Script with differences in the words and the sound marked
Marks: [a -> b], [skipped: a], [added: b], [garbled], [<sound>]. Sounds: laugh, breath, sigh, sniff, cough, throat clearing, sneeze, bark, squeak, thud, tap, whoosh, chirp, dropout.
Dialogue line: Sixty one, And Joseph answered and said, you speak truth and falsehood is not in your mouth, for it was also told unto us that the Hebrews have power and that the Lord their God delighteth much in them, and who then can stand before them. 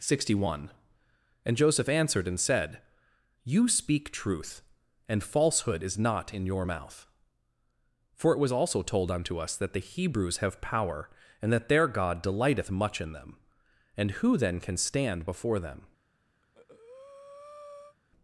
Sixty one, And Joseph answered and said, you speak truth and falsehood is not in your mouth, for it was also told unto us that the Hebrews have power and that [skipped: the Lord] their God delighteth much in them, and who then can stand before them. [breath]